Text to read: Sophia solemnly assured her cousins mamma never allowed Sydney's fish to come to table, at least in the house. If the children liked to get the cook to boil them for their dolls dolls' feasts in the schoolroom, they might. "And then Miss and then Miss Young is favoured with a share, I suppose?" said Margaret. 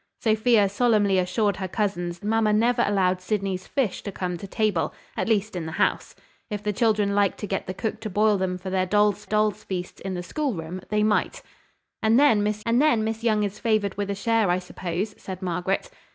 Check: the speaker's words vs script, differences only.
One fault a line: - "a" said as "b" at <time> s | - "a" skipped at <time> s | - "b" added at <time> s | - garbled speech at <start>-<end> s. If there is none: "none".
none